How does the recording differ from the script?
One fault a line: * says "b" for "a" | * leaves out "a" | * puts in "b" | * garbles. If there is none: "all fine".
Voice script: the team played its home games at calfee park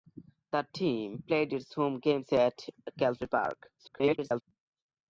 * garbles